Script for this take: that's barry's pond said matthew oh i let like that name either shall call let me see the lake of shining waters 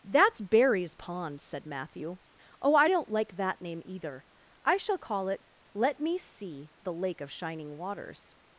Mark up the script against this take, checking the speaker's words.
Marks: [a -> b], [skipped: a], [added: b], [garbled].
that's barry's pond said matthew oh i [let -> don't] like that name either [added: i] shall call [added: it] let me see the lake of shining waters